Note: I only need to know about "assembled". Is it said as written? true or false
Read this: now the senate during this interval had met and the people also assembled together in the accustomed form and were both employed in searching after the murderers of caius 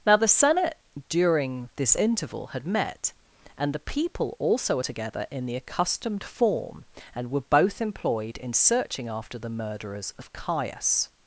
false